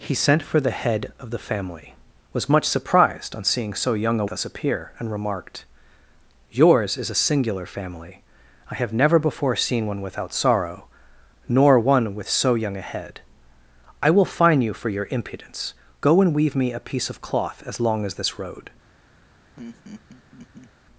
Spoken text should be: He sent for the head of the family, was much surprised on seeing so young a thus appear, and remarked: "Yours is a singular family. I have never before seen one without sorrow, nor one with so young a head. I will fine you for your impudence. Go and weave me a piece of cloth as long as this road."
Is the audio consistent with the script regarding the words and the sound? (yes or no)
no